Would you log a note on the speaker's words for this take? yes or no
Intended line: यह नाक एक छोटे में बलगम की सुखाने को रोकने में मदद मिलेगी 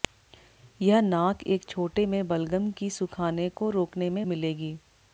yes